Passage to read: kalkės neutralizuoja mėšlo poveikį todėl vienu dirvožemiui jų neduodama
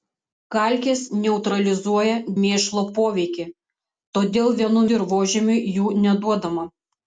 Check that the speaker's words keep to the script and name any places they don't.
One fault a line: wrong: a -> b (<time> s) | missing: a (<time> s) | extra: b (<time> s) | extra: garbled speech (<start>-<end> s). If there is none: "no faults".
no faults